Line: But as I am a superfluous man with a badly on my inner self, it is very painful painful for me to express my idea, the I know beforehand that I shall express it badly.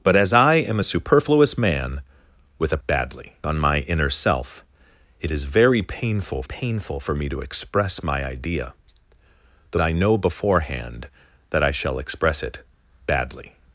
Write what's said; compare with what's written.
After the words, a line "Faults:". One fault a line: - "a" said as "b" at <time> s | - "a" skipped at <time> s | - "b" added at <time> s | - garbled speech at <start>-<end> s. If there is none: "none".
But as I am a superfluous man with a badly on my inner self, it is very painful painful for me to express my idea, the I know beforehand that I shall express it badly.
Faults:
none